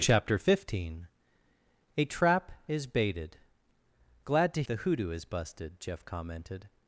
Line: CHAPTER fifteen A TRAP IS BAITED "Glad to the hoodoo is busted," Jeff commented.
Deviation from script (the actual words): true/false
false